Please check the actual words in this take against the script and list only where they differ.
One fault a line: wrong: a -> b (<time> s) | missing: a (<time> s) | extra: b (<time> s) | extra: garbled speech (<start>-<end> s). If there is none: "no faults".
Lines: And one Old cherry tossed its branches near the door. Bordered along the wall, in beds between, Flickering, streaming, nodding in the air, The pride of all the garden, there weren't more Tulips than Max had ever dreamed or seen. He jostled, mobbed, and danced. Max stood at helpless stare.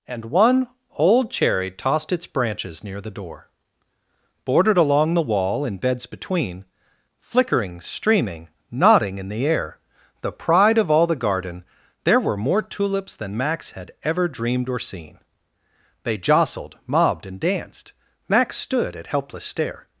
wrong: weren't -> were (12.2 s)
wrong: He -> They (16.0 s)